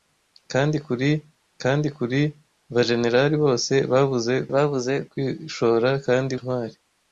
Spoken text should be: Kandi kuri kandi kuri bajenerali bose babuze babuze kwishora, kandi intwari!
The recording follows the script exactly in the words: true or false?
true